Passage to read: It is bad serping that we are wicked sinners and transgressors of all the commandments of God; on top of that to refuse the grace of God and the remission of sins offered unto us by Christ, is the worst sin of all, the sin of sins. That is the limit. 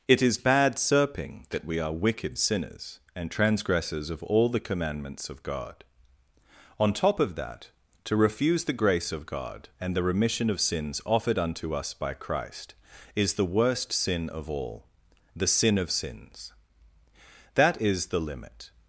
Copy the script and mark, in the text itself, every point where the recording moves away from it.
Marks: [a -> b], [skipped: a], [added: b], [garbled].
It is bad serping that we are wicked sinners and transgressors of all the commandments of God; on top of that to refuse the grace of God and the remission of sins offered unto us by Christ, is the worst sin of all, the sin of sins. That is the limit.